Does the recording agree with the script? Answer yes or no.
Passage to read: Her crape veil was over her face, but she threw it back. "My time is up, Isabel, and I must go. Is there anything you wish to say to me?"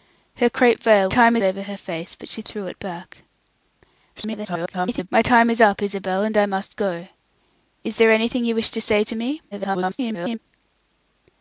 no